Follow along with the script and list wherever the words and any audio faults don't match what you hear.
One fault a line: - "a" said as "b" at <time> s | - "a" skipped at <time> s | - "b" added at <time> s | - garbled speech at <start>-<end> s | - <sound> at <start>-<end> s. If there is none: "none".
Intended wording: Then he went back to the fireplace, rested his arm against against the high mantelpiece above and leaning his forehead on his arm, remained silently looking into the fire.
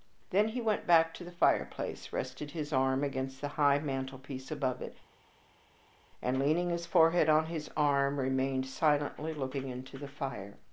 - "against" skipped at 3.4 s
- "it" added at 4.8 s